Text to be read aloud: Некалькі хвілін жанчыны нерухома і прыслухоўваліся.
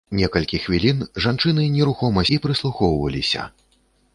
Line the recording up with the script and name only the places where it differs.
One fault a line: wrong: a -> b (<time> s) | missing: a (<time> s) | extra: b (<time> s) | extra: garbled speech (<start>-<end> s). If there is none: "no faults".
no faults